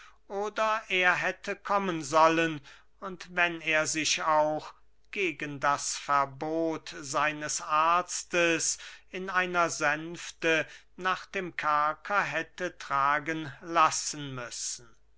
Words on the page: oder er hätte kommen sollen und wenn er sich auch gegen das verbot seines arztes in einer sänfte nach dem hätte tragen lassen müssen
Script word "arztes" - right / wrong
right